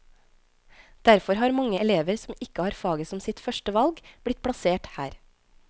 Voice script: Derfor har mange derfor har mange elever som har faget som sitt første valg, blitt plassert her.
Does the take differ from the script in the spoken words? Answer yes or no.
yes